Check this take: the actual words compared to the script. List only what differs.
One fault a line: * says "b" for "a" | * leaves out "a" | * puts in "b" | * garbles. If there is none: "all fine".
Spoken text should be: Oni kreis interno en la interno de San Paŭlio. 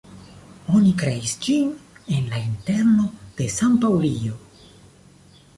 * says "ĝin" for "interno"